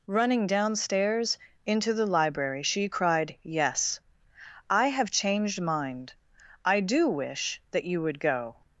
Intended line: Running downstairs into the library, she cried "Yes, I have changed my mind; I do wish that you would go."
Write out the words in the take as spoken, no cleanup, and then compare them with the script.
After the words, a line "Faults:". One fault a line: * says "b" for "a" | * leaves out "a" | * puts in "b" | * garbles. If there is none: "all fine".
Running downstairs into the library, she cried "Yes, I have changed mind; I do wish that you would go."
Faults:
* leaves out "my"